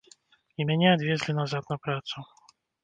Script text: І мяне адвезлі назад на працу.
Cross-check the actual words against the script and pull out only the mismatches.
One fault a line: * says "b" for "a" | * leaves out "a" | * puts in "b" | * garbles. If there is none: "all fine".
all fine